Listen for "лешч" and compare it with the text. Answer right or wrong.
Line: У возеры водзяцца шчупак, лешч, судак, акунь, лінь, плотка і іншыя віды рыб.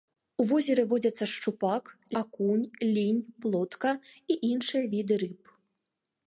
wrong